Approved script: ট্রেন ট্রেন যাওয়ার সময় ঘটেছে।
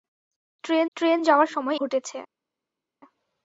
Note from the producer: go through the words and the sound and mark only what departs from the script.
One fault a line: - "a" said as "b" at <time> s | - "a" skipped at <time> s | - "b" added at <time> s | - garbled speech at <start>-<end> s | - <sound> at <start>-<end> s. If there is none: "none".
none